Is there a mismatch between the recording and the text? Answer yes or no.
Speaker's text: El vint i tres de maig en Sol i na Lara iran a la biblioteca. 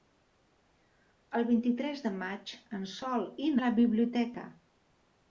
yes